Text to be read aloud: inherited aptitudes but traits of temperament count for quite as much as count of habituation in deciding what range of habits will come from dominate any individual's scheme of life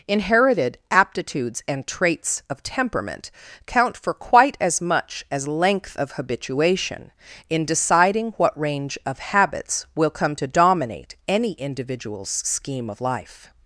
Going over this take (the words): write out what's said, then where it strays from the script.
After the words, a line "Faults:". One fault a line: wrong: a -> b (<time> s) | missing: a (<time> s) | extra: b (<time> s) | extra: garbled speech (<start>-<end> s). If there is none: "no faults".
inherited aptitudes and traits of temperament count for quite as much as length of habituation in deciding what range of habits will come to dominate any individual's scheme of life
Faults:
wrong: but -> and (1.7 s)
wrong: count -> length (5.5 s)
wrong: from -> to (10.3 s)